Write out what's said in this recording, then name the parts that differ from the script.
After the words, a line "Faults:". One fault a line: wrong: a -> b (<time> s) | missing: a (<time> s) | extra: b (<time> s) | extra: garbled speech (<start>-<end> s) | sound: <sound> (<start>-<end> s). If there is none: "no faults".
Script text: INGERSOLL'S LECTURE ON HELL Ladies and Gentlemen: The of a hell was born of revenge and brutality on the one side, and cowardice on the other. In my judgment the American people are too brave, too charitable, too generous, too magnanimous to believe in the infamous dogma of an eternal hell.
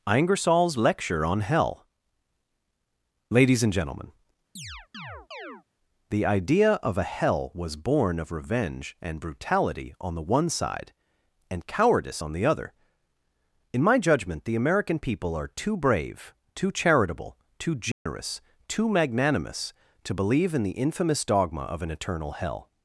INGERSOLL'S LECTURE ON HELL Ladies and Gentlemen: The idea of a hell was born of revenge and brutality on the one side, and cowardice on the other. In my judgment the American people are too brave, too charitable, too generous, too magnanimous to believe in the infamous dogma of an eternal hell.
Faults:
sound: chirp (4.6-5.6 s)
extra: idea (6.3 s)
sound: dropout (17.9-18.1 s)